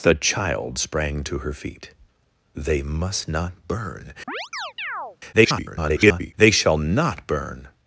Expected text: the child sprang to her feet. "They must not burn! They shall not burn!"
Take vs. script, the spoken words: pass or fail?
fail